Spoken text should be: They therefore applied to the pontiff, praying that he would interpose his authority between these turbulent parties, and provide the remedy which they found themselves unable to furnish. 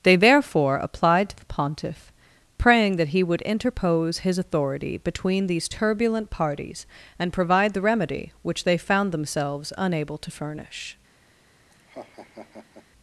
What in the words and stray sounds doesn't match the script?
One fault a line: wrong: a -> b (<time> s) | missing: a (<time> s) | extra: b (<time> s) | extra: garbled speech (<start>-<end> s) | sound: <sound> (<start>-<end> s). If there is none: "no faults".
sound: laugh (11.7-12.9 s)